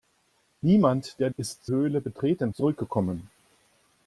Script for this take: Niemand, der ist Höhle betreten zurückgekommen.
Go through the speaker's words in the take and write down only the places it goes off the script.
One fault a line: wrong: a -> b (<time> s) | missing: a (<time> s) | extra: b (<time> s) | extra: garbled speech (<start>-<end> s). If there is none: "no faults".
no faults